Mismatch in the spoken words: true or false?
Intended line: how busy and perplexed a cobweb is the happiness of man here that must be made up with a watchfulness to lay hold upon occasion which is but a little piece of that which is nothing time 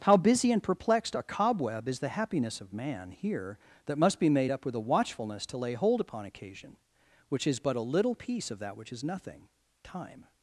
false